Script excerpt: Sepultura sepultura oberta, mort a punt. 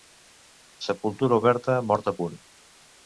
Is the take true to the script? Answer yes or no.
no